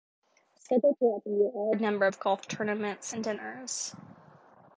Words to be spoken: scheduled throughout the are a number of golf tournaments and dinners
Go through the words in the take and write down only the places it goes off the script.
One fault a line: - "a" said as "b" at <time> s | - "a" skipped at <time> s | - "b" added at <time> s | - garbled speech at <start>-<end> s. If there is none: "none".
- "year" added at 1.3 s